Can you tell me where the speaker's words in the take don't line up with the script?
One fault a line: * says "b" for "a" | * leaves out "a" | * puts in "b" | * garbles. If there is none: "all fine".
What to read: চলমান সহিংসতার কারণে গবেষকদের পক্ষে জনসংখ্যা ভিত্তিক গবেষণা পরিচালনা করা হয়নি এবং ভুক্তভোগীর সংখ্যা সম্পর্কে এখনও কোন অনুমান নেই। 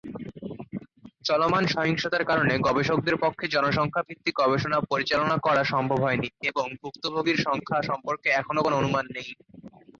* puts in "সম্ভব"